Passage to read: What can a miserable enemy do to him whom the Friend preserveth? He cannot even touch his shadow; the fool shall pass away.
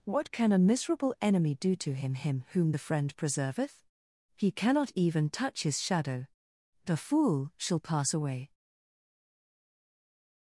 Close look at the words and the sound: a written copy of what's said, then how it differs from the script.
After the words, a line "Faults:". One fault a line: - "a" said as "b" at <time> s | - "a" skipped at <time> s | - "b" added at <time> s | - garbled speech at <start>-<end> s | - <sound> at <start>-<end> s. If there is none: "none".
What can a miserable enemy do to him him whom the Friend preserveth? He cannot even touch his shadow; the fool shall pass away.
Faults:
- "him" added at 2.1 s